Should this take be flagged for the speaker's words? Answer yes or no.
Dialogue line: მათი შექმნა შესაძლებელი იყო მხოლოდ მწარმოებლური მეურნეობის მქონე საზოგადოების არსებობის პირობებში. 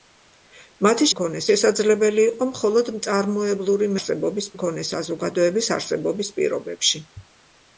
yes